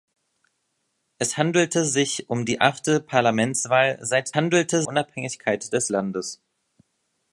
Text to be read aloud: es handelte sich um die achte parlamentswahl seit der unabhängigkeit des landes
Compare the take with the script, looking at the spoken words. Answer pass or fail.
fail